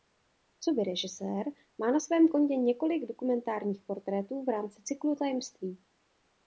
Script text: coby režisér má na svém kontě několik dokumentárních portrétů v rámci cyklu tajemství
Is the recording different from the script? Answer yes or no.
no